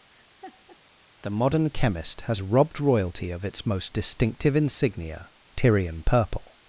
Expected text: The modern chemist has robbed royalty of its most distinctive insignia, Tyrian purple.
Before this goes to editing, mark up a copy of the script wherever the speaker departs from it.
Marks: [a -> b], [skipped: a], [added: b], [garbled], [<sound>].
[laugh] The modern chemist has robbed royalty of its most distinctive insignia, Tyrian purple.